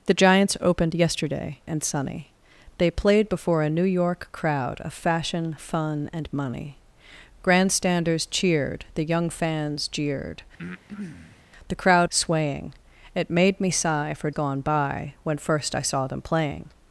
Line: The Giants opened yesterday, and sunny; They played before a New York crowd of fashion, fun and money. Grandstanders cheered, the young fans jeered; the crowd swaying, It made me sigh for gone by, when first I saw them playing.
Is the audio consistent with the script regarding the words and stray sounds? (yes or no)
no